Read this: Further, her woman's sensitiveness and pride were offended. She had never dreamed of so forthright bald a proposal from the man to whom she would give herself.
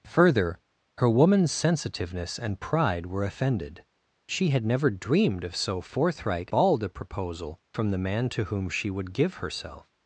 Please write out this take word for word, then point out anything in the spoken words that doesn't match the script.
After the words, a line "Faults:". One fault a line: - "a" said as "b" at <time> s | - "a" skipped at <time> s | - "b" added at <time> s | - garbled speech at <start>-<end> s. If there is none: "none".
Further, her woman's sensitiveness and pride were offended. She had never dreamed of so forthright bald a proposal from the man to whom she would give herself.
Faults:
none